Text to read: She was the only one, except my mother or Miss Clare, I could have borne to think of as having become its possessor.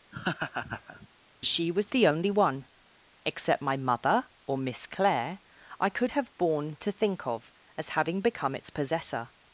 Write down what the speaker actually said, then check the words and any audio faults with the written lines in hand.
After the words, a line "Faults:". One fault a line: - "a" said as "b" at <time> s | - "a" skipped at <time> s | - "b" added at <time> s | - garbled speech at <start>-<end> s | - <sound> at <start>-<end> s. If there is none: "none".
She was the only one, except my mother or Miss Clare, I could have borne to think of as having become its possessor.
Faults:
- laugh at 0.1-1.1 s